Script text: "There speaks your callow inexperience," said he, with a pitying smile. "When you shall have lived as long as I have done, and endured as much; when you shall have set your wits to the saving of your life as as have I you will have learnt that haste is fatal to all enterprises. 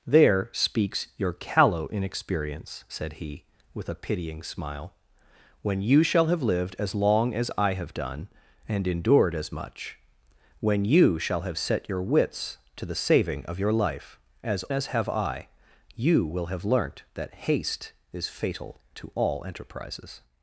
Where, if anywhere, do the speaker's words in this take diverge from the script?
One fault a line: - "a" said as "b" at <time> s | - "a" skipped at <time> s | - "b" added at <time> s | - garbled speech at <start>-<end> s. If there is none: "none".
none